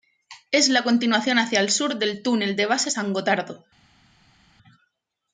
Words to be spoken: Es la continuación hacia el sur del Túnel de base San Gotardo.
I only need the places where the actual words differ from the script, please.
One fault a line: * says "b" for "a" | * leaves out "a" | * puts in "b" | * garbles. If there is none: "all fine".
all fine